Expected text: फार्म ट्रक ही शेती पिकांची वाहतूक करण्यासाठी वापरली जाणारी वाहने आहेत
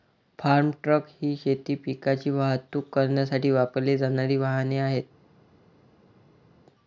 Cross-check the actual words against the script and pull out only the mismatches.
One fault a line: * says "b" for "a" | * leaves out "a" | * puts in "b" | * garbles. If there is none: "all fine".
all fine